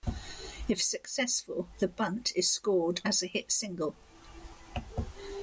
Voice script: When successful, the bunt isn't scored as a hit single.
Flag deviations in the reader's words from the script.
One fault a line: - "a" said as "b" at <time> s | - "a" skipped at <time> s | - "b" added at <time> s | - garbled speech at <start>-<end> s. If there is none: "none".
- "When" said as "If" at 0.7 s
- "isn't" said as "is" at 2.3 s